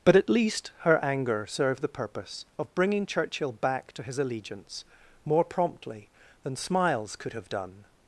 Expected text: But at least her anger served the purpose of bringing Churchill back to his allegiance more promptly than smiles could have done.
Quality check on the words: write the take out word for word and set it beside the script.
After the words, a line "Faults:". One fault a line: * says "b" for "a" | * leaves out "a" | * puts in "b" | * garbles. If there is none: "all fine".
But at least her anger served the purpose of bringing Churchill back to his allegiance more promptly than smiles could have done.
Faults:
all fine